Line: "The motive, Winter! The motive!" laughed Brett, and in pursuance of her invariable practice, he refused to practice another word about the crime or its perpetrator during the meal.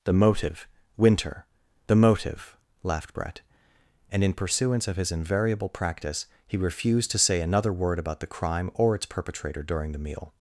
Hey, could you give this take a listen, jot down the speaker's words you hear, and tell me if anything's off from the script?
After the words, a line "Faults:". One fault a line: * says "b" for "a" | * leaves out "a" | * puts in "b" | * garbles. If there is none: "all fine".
"The motive, Winter! The motive!" laughed Brett, and in pursuance of his invariable practice, he refused to say another word about the crime or its perpetrator during the meal.
Faults:
* says "his" for "her"
* says "say" for "practice"